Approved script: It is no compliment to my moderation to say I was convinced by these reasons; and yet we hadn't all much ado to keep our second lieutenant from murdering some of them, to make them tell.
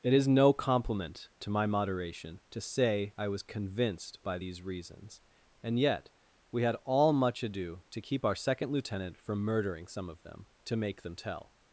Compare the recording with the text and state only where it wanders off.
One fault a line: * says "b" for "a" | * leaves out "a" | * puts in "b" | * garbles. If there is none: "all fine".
* says "had" for "hadn't"